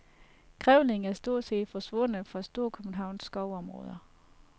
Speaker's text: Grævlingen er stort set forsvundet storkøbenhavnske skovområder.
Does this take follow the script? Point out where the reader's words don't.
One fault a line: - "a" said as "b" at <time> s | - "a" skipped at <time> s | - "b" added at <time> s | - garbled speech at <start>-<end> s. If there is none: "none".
- "fra" added at 2.3 s